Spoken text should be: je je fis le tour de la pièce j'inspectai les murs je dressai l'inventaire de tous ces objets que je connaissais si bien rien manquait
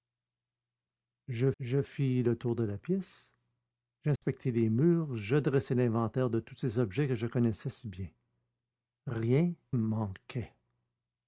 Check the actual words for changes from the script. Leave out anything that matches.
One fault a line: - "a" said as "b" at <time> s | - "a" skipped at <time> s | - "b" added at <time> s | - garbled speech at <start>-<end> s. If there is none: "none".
none